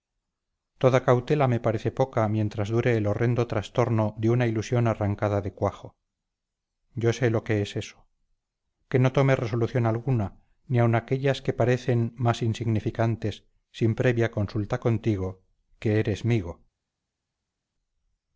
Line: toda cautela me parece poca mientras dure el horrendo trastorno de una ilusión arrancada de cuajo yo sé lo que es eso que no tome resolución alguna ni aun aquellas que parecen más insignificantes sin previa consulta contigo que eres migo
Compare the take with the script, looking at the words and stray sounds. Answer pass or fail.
pass